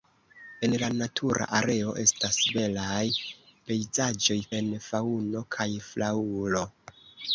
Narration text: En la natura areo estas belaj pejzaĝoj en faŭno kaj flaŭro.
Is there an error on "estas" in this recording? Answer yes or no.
no